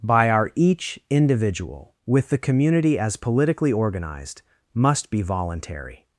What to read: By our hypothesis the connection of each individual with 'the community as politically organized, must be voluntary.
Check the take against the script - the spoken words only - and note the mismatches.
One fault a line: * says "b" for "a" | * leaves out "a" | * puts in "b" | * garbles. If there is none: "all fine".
* leaves out "hypothesis the connection of"